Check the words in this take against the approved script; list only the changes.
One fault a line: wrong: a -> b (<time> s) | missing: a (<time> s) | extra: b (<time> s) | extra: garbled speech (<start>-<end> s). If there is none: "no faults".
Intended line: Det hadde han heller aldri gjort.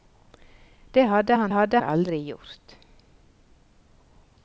wrong: heller -> hadde (1.5 s)